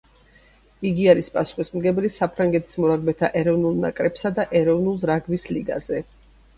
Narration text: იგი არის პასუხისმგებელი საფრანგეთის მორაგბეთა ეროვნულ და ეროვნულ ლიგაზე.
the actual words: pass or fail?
fail